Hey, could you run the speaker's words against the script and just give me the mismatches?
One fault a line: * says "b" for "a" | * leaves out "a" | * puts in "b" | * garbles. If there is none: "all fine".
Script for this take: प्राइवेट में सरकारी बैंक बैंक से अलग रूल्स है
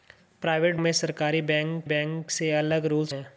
all fine